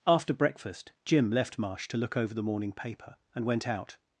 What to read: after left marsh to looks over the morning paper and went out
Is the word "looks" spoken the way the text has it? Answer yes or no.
no